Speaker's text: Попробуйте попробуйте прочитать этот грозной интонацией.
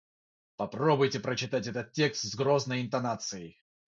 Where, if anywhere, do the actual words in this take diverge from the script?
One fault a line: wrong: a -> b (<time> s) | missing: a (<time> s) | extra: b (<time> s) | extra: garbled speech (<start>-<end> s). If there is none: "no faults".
missing: попробуйте (1.2 s)
extra: текст с (1.9 s)